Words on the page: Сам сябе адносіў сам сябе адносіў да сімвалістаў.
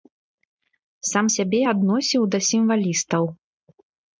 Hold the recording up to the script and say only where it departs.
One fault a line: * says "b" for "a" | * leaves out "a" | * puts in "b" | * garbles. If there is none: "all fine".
* leaves out "сам сябе адносіў"